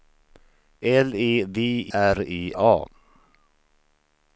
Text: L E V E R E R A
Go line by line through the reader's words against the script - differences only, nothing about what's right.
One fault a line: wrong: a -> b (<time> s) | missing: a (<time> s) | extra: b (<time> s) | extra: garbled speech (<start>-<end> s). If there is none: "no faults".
missing: E (1.6 s)
missing: R (2.5 s)